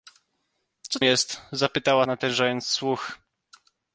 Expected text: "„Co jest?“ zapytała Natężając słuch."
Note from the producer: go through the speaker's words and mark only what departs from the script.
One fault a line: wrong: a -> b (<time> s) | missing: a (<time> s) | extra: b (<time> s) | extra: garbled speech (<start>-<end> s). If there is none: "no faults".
no faults